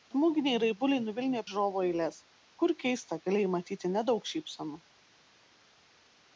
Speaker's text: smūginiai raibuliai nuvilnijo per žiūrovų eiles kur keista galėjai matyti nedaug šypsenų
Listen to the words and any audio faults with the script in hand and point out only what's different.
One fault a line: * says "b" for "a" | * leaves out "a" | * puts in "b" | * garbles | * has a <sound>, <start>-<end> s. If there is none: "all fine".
* leaves out "per"